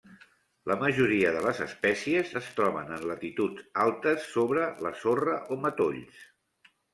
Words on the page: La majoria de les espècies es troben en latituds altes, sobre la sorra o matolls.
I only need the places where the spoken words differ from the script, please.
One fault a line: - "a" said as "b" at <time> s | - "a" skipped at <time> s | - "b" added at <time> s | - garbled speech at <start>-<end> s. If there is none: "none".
none